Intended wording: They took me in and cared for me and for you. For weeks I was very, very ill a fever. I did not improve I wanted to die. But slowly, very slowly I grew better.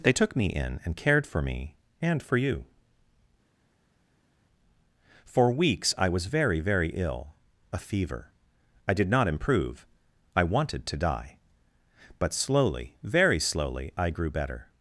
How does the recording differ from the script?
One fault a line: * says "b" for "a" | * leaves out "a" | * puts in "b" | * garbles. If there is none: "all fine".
all fine